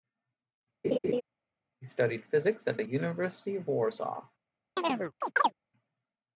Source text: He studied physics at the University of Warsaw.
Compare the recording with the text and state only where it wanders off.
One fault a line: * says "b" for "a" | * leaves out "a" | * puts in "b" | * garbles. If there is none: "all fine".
all fine